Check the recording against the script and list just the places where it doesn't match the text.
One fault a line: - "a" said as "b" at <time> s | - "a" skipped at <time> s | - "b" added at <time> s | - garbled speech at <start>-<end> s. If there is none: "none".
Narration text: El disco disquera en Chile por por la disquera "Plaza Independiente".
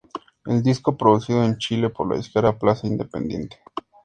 - "disquera" said as "producido" at 1.0 s
- "por" skipped at 2.1 s